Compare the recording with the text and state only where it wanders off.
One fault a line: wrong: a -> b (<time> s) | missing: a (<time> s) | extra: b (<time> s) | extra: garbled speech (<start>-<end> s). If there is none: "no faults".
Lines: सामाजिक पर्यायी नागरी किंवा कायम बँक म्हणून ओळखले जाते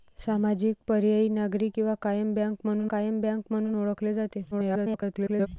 extra: कायम बँक म्हणून (2.9 s)
extra: garbled speech (4.5-5.5 s)